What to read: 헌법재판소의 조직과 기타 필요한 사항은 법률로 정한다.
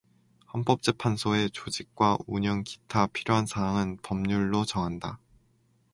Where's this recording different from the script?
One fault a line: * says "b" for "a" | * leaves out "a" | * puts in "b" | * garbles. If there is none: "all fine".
* puts in "운영"